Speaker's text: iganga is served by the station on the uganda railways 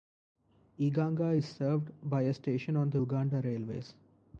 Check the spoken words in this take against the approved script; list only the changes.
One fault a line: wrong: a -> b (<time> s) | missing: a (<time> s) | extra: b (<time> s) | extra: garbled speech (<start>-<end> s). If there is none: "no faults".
wrong: the -> a (2.2 s)